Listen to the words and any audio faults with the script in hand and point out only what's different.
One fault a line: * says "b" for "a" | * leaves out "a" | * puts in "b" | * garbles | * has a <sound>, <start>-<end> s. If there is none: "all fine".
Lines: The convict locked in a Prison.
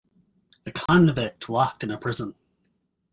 * has a dropout, 0.9-0.9 s